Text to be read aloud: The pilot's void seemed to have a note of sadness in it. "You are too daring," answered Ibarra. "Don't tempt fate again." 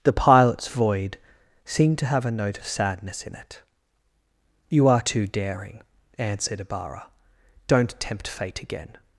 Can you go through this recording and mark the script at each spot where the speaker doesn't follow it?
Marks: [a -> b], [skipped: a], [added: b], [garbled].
The pilot's void seemed to have a note of sadness in it. "You are too daring," answered Ibarra. "Don't tempt fate again."